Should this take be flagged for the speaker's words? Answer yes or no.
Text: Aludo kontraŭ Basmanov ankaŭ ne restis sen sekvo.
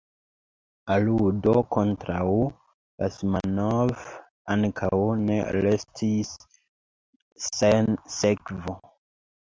no